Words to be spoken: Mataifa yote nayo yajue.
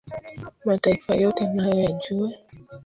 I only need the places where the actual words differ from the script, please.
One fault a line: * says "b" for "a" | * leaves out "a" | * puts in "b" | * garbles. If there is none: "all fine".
all fine